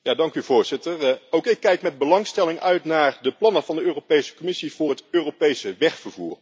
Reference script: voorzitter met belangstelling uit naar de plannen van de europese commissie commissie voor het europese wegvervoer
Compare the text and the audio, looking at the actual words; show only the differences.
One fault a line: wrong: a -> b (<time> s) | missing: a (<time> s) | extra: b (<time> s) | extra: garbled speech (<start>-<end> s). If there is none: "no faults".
extra: ook ik kijk (1.3 s)
missing: commissie (4.7 s)